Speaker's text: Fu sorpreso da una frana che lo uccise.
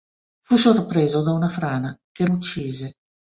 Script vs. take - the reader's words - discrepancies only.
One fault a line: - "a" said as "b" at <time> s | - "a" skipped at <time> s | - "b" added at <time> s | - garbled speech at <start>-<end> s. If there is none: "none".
- "lo" skipped at 2.2 s